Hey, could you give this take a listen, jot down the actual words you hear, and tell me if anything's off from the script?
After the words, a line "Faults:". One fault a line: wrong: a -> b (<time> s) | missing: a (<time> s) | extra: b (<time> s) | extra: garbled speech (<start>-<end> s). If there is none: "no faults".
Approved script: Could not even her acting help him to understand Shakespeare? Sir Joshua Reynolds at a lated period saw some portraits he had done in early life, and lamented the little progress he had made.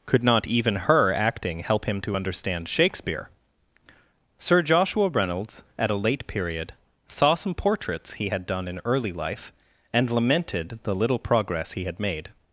Could not even her acting help him to understand Shakespeare? Sir Joshua Reynolds at a late period saw some portraits he had done in early life, and lamented the little progress he had made.
Faults:
wrong: lated -> late (5.9 s)